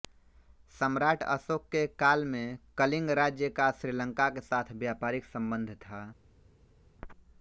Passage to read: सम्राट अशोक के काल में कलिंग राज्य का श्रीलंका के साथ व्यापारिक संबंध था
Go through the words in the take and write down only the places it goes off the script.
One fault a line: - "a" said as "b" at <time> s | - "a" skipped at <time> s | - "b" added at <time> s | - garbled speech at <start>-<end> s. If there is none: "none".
none